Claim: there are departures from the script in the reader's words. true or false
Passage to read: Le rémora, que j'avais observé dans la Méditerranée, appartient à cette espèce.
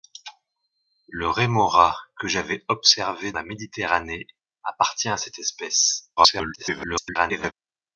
true